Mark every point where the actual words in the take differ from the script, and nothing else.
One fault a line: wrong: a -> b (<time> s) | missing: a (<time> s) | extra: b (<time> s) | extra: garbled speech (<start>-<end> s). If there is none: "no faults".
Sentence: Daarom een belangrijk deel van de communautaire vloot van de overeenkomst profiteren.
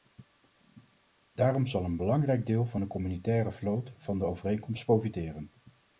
extra: zal (1.7 s)